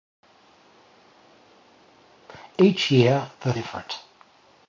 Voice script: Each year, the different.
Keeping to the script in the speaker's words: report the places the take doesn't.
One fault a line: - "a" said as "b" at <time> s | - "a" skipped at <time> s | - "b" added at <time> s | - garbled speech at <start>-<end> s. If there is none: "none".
none